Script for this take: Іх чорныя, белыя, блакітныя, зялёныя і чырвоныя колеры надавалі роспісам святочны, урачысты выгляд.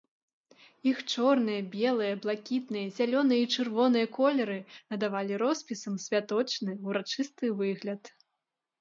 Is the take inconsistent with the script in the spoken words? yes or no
no